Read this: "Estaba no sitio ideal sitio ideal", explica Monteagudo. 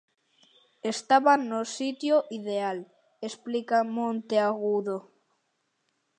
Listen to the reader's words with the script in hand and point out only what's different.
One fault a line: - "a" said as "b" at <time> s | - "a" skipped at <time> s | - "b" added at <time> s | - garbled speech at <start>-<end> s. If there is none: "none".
- "sitio ideal" skipped at 2.8 s